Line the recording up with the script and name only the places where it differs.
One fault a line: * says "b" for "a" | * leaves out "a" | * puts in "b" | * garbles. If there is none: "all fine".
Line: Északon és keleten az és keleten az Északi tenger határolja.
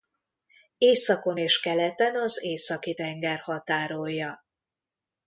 * leaves out "és keleten az"